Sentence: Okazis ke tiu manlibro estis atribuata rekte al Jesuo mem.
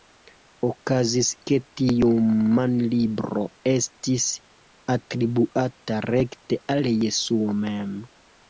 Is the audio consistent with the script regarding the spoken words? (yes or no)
yes